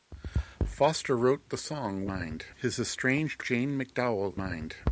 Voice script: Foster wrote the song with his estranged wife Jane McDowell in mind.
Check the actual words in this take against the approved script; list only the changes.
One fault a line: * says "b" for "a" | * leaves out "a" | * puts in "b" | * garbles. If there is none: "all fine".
* says "mind" for "with"
* leaves out "wife"
* leaves out "in"